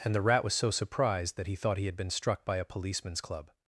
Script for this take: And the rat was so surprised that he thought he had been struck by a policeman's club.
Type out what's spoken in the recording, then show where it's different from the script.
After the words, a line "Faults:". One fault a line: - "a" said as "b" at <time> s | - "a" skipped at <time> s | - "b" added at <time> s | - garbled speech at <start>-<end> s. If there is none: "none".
And the rat was so surprised that he thought he had been struck by a policeman's club.
Faults:
none